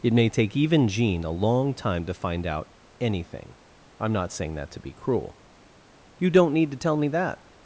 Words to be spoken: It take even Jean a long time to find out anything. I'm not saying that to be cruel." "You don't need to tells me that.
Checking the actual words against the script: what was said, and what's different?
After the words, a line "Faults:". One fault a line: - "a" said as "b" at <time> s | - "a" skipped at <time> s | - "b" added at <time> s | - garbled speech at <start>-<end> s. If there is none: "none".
It may take even Jean a long time to find out anything. I'm not saying that to be cruel." "You don't need to tell me that.
Faults:
- "may" added at 0.1 s
- "tells" said as "tell" at 6.8 s